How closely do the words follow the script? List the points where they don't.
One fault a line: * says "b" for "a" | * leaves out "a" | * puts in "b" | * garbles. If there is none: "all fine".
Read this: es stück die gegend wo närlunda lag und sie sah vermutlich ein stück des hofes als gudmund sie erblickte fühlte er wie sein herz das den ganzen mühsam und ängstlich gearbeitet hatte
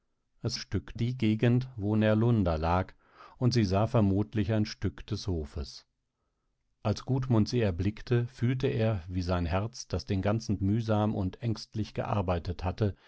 all fine